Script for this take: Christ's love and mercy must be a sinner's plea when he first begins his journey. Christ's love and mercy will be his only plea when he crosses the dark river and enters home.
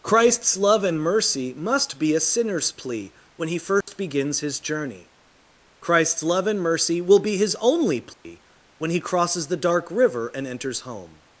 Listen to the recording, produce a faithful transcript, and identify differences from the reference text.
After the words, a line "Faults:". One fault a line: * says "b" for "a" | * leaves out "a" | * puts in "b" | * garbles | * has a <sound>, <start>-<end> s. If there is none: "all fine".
Christ's love and mercy must be a sinner's plea when he first begins his journey. Christ's love and mercy will be his only plea when he crosses the dark river and enters home.
Faults:
* has a dropout, 3.8-3.9 s
* has a dropout, 8.1-8.2 s